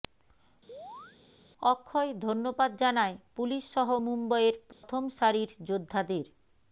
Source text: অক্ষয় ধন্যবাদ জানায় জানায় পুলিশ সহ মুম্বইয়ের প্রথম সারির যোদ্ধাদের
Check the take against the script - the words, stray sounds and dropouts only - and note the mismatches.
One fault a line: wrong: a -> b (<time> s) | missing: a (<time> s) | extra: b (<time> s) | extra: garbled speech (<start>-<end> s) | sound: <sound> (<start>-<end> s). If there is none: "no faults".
sound: chirp (0.7-1.2 s)
missing: জানায় (3.1 s)
sound: dropout (4.7-4.8 s)